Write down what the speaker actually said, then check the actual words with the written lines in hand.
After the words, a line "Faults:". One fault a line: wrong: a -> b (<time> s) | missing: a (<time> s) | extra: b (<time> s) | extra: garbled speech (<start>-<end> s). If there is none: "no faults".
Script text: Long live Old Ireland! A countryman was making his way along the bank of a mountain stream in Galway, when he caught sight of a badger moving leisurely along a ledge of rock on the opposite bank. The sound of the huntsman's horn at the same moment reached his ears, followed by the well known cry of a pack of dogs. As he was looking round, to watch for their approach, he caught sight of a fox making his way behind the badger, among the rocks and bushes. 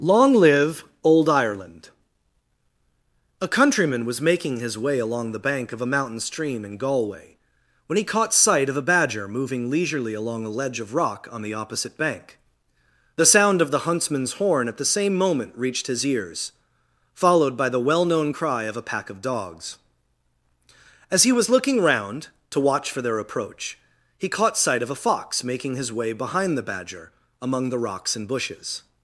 Long live Old Ireland! A countryman was making his way along the bank of a mountain stream in Galway, when he caught sight of a badger moving leisurely along a ledge of rock on the opposite bank. The sound of the huntsman's horn at the same moment reached his ears, followed by the well known cry of a pack of dogs. As he was looking round, to watch for their approach, he caught sight of a fox making his way behind the badger, among the rocks and bushes.
Faults:
no faults